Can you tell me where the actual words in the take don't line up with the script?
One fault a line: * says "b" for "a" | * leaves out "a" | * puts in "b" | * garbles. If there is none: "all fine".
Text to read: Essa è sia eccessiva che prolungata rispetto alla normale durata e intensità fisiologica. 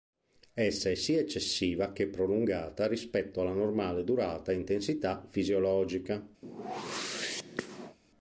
all fine